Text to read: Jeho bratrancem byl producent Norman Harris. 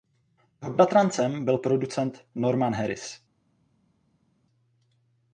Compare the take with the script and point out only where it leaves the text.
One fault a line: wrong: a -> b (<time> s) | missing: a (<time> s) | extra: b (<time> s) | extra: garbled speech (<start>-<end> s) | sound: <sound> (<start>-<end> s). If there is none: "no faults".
no faults